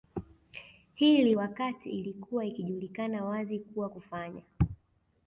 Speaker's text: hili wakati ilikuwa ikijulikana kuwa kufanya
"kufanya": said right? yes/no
yes